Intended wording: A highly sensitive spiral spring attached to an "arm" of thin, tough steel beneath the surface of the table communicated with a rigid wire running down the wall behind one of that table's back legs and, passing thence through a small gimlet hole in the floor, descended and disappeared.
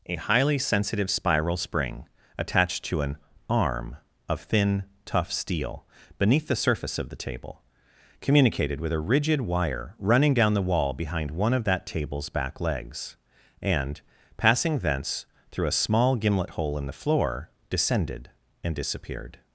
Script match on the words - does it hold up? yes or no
yes